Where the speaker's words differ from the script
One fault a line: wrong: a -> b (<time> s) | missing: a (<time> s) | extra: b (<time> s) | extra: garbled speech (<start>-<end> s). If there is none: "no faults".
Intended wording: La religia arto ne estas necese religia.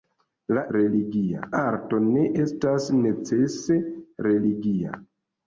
no faults